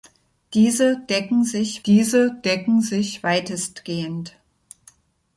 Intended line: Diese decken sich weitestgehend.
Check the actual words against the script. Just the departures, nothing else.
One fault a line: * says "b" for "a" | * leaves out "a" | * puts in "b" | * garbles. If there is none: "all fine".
* puts in "diese decken sich"